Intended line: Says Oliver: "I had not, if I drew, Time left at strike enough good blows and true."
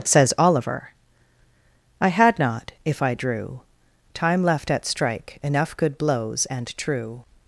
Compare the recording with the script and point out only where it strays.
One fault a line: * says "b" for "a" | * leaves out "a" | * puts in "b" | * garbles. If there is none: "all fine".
all fine